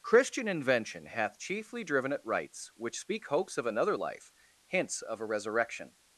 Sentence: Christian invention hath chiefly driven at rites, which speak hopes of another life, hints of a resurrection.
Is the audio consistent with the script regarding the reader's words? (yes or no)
yes